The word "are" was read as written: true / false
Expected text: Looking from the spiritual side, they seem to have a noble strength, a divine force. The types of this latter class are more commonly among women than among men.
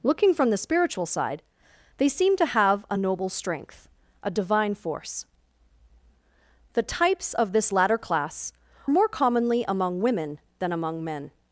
false